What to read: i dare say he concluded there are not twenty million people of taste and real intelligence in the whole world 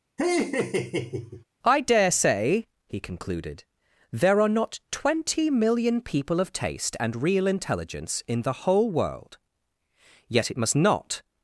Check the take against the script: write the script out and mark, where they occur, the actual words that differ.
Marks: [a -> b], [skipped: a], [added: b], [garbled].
i dare say he concluded there are not twenty million people of taste and real intelligence in the whole world [added: yet it must not]